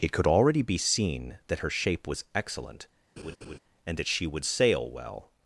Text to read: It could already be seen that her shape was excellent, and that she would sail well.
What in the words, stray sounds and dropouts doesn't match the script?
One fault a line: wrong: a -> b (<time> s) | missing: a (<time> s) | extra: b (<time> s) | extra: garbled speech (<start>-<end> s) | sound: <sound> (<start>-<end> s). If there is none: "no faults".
sound: laugh (3.2-3.6 s)